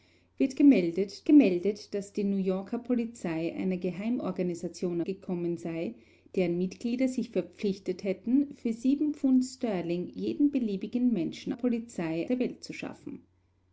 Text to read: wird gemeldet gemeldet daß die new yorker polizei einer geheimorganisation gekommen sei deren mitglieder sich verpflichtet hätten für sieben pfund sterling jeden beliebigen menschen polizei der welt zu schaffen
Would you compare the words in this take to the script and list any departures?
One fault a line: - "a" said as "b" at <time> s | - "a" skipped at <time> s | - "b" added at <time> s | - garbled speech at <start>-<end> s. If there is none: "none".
none